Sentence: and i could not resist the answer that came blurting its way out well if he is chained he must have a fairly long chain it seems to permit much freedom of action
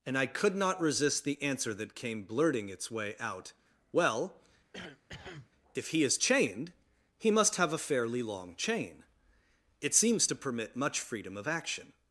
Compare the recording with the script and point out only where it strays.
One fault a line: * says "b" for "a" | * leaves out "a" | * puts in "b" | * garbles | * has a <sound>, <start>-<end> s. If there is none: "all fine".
* has a cough, 4.7-5.5 s